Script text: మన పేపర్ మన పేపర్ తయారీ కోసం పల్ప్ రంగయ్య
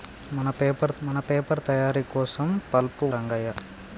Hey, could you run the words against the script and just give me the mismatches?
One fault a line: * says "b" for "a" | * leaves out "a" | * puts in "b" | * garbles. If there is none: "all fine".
all fine